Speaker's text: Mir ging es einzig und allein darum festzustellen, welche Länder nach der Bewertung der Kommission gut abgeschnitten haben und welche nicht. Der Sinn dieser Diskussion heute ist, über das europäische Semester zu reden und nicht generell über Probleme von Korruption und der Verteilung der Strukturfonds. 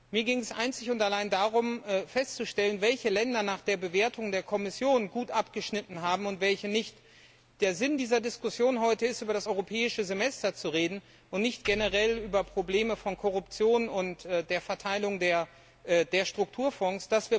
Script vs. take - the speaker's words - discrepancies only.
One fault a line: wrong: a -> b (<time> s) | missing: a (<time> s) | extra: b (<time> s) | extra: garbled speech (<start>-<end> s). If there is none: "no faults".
no faults